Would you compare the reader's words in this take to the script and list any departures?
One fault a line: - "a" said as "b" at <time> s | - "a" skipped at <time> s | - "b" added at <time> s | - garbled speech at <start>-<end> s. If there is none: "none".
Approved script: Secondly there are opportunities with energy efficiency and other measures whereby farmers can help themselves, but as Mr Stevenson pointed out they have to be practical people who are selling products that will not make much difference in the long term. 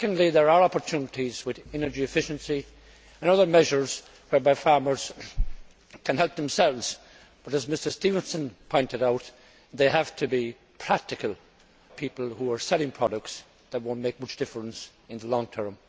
none